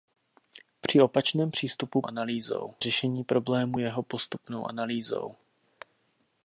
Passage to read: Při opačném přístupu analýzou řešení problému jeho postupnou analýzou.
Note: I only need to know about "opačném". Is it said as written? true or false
true